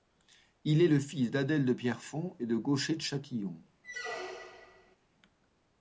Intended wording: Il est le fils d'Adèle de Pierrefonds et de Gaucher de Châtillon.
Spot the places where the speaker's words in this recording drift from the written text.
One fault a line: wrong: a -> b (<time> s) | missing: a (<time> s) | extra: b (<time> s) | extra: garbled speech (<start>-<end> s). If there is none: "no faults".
no faults